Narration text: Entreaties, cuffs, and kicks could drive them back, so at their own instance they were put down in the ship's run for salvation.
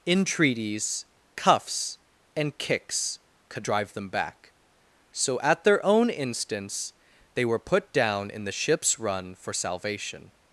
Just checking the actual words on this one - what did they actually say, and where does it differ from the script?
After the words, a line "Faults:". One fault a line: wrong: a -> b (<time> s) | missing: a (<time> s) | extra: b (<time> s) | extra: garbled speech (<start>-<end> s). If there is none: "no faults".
Entreaties, cuffs, and kicks could drive them back, so at their own instance they were put down in the ship's run for salvation.
Faults:
no faults